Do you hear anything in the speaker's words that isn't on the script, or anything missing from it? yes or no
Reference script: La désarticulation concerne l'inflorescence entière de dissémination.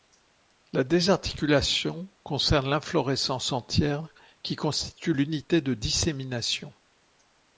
yes